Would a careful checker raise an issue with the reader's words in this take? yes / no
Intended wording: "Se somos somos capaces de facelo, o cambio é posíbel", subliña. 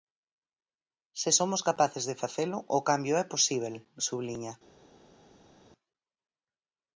yes